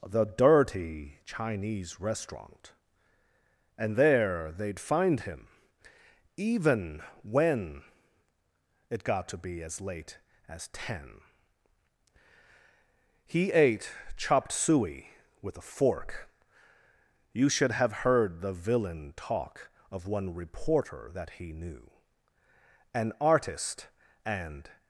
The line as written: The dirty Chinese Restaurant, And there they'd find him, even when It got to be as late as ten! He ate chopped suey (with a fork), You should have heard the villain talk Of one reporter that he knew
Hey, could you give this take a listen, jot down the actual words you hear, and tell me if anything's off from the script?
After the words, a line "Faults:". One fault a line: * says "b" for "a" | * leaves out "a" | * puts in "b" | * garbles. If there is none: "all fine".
The dirty Chinese Restaurant, And there they'd find him, even when It got to be as late as ten! He ate chopped suey (with a fork), You should have heard the villain talk Of one reporter that he knew An artist, and
Faults:
* puts in "An artist and"